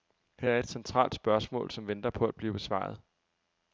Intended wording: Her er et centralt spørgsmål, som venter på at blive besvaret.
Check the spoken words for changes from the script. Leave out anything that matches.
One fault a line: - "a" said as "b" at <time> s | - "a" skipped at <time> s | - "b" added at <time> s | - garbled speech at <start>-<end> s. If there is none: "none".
none